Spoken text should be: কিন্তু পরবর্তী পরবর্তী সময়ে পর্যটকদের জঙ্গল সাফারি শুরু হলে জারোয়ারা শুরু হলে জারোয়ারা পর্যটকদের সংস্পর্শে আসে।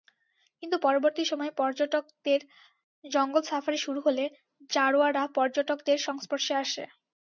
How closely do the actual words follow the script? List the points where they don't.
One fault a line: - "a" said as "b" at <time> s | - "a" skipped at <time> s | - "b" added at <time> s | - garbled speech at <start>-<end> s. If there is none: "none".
- "পরবর্তী" skipped at 1.2 s
- "শুরু হলে জারোয়ারা" skipped at 5.2 s